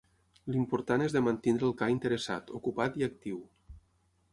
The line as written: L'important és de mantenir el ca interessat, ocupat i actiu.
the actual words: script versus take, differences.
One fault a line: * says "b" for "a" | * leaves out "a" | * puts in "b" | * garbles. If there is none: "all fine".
all fine